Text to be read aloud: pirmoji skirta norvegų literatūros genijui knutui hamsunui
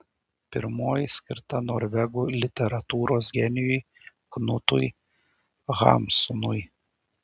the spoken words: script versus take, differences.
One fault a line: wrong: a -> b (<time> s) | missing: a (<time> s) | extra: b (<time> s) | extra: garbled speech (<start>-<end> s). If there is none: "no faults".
no faults